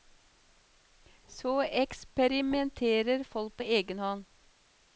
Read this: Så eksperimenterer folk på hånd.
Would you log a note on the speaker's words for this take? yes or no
yes